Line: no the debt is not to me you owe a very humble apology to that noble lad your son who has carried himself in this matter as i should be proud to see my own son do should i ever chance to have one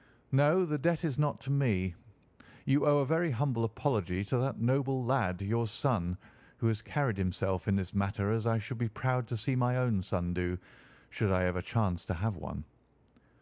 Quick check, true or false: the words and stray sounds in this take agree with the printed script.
true